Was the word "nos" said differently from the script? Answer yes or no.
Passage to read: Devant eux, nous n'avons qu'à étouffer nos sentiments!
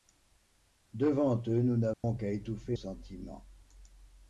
yes